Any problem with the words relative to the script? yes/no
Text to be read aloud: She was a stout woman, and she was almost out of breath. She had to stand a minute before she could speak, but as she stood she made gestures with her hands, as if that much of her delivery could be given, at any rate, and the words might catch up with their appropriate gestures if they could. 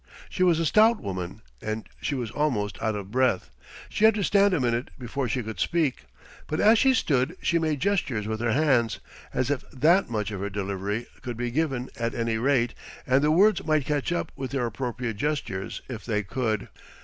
no